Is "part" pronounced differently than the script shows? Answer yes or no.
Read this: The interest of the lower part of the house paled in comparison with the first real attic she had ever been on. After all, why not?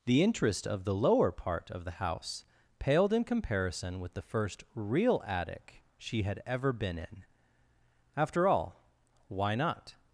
no